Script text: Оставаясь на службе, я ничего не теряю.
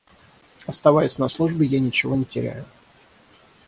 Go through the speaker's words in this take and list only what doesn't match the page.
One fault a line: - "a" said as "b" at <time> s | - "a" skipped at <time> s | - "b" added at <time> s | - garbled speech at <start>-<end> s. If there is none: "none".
none